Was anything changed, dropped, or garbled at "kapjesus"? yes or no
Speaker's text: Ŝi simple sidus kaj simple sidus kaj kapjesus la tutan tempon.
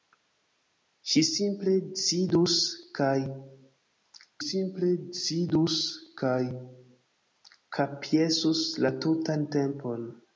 no